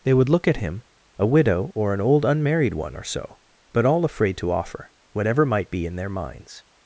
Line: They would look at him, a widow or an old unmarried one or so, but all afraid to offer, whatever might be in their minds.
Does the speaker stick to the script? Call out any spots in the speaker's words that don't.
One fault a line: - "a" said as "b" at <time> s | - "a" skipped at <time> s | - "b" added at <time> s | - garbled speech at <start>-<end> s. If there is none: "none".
none